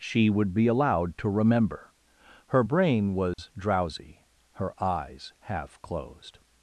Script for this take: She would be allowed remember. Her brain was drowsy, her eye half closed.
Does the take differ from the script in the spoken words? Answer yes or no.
yes